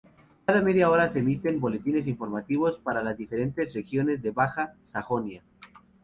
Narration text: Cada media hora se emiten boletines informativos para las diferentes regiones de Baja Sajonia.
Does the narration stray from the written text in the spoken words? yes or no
no